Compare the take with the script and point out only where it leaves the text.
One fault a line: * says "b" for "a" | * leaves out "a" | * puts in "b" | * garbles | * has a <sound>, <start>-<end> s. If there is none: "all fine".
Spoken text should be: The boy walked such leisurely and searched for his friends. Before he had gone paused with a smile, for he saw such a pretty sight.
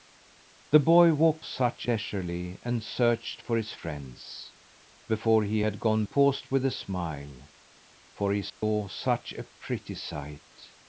* has a dropout, 8.5-8.6 s